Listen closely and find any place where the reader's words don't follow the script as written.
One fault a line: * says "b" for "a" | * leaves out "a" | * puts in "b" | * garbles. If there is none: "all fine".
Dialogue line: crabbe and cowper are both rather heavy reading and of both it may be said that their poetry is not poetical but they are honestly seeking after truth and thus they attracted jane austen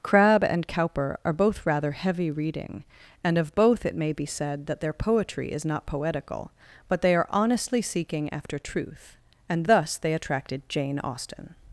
all fine